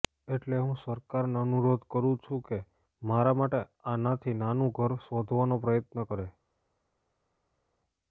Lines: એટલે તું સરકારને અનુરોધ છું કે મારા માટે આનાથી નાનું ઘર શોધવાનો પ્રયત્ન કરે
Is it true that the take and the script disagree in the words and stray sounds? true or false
true